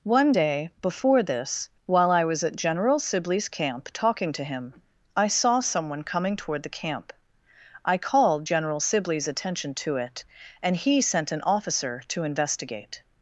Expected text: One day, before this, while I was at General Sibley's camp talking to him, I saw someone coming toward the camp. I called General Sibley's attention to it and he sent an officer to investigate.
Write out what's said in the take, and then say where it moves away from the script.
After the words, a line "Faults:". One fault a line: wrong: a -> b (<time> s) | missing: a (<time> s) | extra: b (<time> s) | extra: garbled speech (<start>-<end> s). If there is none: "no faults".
One day, before this, while I was at General Sibley's camp talking to him, I saw someone coming toward the camp. I called General Sibley's attention to it and he sent an officer to investigate.
Faults:
no faults